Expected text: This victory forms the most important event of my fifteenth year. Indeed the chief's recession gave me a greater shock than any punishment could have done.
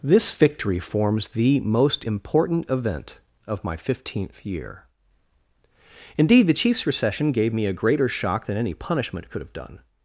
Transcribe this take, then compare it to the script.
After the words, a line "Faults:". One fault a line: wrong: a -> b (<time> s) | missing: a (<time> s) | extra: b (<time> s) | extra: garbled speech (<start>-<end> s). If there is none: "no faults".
This victory forms the most important event of my fifteenth year. Indeed the chief's recession gave me a greater shock than any punishment could have done.
Faults:
no faults